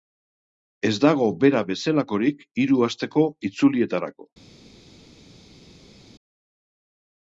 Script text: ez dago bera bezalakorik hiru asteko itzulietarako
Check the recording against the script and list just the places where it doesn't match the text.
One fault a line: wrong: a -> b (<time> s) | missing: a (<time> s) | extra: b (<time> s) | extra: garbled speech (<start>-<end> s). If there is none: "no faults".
no faults